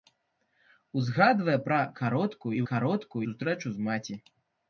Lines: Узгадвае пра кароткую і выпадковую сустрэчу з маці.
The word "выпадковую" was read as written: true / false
false